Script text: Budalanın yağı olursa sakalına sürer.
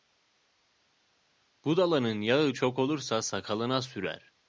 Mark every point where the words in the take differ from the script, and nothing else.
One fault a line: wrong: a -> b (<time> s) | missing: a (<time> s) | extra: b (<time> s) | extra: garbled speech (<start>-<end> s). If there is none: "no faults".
extra: çok (2.5 s)